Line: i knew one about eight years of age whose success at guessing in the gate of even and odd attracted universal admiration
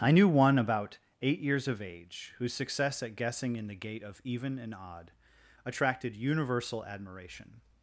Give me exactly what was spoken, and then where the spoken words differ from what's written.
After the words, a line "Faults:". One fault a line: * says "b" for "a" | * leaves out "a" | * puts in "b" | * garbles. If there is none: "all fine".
i knew one about eight years of age whose success at guessing in the gate of even and odd attracted universal admiration
Faults:
all fine